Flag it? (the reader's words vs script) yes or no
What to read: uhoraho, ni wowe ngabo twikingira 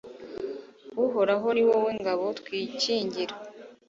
no